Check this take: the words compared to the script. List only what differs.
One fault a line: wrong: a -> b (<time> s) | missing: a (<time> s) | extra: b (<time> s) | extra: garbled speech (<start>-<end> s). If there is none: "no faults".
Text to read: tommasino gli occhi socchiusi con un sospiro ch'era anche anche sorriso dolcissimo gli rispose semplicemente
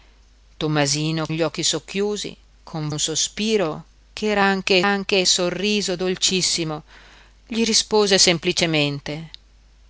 no faults